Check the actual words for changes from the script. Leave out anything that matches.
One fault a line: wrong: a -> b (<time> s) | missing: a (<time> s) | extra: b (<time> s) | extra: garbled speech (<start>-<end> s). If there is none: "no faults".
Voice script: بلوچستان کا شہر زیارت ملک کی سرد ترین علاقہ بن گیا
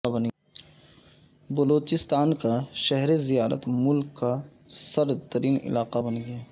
wrong: کی -> کا (4.1 s)